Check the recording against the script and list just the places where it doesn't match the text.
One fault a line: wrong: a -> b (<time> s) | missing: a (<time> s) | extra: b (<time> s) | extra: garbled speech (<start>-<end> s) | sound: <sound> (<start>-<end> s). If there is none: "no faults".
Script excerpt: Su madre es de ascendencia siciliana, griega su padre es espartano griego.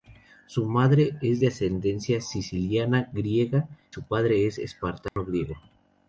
sound: dropout (5.1-5.2 s)